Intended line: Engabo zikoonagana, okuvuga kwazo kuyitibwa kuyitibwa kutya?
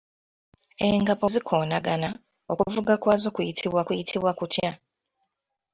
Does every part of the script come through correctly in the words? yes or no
yes